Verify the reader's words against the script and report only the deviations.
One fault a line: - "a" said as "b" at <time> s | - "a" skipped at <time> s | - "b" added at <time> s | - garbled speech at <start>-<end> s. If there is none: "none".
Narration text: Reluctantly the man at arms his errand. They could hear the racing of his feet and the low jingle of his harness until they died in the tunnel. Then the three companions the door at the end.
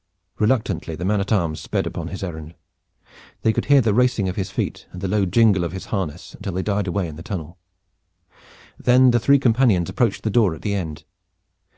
- "sped upon" added at 1.6 s
- "away" added at 6.9 s
- "approached" added at 9.9 s